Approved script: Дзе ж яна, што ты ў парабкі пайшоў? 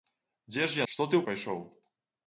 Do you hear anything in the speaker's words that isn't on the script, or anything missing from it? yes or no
yes